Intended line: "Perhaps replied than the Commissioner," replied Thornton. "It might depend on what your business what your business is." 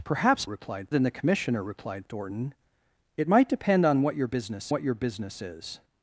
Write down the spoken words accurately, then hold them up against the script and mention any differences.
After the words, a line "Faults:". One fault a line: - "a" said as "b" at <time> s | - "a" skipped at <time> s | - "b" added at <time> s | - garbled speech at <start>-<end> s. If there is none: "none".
"Perhaps replied than the Commissioner," replied Thornton. "It might depend on what your business what your business is."
Faults:
none